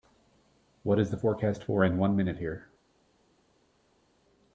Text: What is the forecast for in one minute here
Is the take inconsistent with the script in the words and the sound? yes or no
no